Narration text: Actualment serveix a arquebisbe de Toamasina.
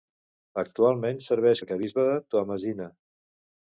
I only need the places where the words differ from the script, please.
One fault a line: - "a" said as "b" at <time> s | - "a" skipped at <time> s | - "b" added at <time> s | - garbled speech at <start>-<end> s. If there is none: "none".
none